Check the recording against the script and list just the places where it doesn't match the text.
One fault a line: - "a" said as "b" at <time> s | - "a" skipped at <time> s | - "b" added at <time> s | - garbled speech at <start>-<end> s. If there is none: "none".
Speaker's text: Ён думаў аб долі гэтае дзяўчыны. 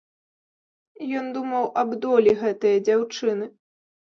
none